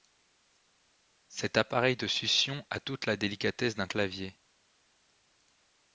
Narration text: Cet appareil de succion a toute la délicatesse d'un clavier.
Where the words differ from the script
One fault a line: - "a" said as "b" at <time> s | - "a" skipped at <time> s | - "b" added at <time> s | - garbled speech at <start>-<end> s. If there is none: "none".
none